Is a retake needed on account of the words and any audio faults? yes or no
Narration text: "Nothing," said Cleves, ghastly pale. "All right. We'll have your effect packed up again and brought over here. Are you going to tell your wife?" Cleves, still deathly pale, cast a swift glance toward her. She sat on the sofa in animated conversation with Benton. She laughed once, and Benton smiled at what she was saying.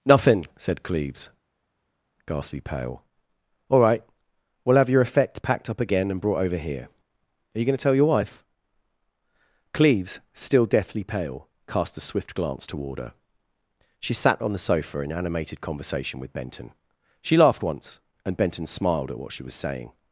no